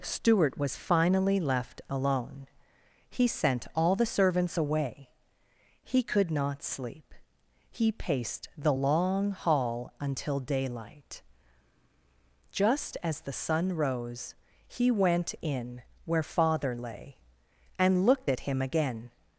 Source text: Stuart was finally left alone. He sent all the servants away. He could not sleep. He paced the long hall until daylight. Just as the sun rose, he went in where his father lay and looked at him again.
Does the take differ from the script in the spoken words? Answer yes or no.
yes